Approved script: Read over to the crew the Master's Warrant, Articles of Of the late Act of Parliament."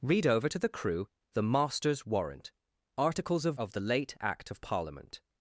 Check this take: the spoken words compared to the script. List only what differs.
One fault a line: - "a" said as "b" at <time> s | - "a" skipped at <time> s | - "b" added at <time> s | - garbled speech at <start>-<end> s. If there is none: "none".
none